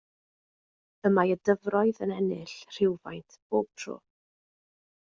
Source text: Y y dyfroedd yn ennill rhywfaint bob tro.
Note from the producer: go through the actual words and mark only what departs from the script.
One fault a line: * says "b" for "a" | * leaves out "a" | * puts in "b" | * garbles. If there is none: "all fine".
* puts in "mae"